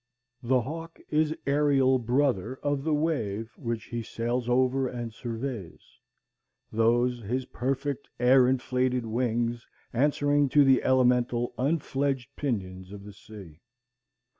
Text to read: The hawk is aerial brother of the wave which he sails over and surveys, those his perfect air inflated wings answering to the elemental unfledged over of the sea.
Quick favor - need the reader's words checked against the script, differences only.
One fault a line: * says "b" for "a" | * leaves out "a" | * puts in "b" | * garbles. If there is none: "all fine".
* says "pinions" for "over"